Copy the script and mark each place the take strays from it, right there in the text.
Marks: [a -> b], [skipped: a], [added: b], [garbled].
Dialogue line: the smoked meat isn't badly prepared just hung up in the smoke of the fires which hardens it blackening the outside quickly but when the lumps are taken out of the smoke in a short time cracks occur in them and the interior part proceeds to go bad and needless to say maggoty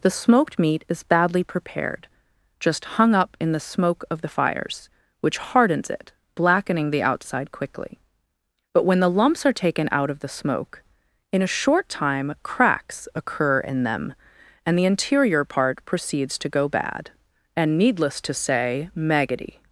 the smoked meat [isn't -> is] badly prepared just hung up in the smoke of the fires which hardens it blackening the outside quickly but when the lumps are taken out of the smoke in a short time cracks occur in them and the interior part proceeds to go bad and needless to say maggoty